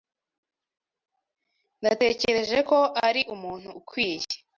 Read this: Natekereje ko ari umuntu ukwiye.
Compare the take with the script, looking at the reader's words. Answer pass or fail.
pass